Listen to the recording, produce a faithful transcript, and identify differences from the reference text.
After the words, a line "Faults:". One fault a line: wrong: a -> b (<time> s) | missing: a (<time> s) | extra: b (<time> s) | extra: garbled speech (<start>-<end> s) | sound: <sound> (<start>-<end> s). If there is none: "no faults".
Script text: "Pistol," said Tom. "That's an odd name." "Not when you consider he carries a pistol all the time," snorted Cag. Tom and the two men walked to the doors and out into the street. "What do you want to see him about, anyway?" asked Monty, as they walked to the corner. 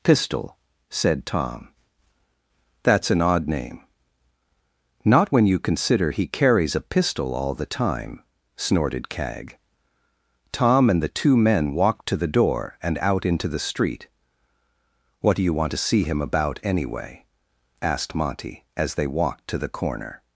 "Pistol," said Tom. "That's an odd name." "Not when you consider he carries a pistol all the time," snorted Cag. Tom and the two men walked to the door and out into the street. "What do you want to see him about, anyway?" asked Monty, as they walked to the corner.
Faults:
wrong: doors -> door (12.3 s)